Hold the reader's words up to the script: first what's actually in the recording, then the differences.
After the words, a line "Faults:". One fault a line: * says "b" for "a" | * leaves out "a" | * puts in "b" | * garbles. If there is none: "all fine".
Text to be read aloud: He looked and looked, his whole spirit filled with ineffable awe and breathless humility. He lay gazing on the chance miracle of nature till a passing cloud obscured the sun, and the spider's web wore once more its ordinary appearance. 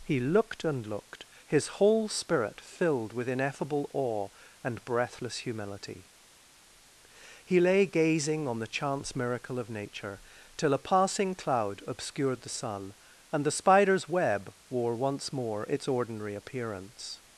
He looked and looked, his whole spirit filled with ineffable awe and breathless humility. He lay gazing on the chance miracle of nature till a passing cloud obscured the sun, and the spider's web wore once more its ordinary appearance.
Faults:
all fine